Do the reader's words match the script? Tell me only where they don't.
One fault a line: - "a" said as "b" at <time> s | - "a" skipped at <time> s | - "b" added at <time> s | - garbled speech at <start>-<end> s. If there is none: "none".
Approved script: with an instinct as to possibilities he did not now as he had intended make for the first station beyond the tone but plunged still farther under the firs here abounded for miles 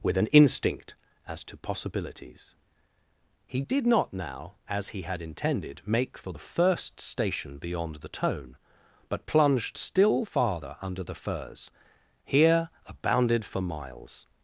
none